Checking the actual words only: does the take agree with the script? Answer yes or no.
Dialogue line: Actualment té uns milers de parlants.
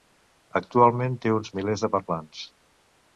yes